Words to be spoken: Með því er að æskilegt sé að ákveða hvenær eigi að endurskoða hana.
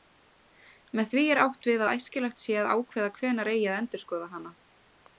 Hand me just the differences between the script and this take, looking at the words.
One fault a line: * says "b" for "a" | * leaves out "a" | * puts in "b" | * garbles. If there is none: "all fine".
* puts in "átt við"